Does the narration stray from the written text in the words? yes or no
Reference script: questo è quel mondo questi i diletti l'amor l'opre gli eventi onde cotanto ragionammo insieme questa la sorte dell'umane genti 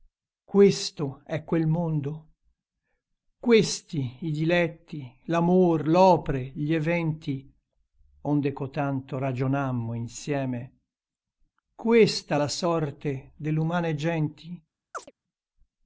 no